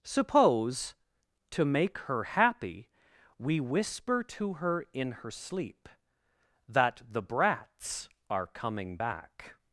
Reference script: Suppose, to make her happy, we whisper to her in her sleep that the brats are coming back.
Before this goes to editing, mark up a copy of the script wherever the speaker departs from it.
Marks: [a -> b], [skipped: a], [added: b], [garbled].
Suppose, to make her happy, we whisper to her in her sleep that the brats are coming back.